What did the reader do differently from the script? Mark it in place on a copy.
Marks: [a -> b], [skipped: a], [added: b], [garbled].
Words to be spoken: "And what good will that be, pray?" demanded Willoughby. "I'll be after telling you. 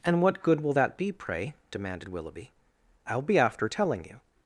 "And what good will that be, pray?" demanded Willoughby. "I'll be after telling you.